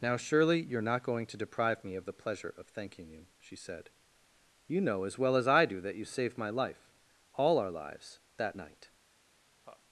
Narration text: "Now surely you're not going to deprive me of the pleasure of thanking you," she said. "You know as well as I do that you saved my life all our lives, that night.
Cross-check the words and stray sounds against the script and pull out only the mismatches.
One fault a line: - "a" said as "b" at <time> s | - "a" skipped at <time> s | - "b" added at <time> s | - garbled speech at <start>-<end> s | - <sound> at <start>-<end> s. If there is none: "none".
- laugh at 9.6-9.8 s